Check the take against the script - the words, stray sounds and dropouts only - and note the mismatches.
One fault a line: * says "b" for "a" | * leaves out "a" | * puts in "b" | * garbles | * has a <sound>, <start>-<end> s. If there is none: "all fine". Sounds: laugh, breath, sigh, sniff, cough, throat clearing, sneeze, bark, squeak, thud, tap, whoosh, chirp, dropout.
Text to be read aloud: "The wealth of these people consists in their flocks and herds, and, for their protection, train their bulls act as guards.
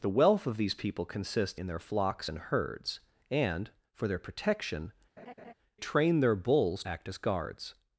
* has a laugh, 5.2-5.5 s